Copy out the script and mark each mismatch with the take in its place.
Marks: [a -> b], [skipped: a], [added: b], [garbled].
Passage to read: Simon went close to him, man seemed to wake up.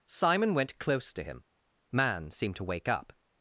Simon went close to him, man seemed to wake up.